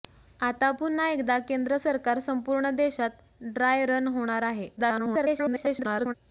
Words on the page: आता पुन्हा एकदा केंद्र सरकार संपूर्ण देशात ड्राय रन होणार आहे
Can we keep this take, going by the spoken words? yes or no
no